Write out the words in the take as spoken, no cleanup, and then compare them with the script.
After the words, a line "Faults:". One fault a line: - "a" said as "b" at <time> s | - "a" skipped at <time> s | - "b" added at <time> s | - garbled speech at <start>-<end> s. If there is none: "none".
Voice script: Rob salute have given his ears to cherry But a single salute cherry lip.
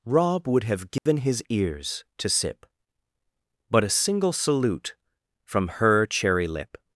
Rob would have given his ears to sip But a single salute from her cherry lip.
Faults:
- "salute" said as "would" at 0.5 s
- "cherry" said as "sip" at 2.3 s
- "from her" added at 5.4 s